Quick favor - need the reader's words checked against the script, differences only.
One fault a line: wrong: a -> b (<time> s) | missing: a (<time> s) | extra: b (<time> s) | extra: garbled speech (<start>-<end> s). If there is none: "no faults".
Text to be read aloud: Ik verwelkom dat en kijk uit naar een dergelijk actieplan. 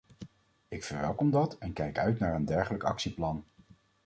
no faults